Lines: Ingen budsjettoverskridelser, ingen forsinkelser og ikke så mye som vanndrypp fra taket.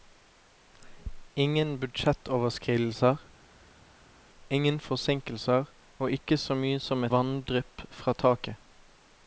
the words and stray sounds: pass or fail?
pass